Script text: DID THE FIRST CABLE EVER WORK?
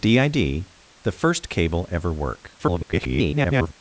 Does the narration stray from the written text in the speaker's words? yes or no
yes